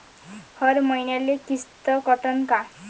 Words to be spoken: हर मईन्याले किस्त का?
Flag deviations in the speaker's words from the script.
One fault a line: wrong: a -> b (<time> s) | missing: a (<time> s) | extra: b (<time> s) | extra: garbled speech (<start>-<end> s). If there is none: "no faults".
extra: कटन (2.1 s)